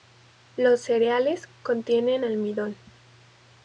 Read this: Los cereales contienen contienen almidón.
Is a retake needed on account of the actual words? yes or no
yes